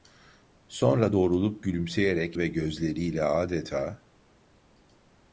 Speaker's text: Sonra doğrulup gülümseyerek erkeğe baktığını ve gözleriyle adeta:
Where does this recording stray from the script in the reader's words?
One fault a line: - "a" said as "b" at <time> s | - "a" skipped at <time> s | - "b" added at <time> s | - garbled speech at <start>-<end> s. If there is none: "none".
- "erkeğe baktığını" skipped at 2.4 s